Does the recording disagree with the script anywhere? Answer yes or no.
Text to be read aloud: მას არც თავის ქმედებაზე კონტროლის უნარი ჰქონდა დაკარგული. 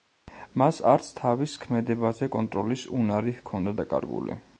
no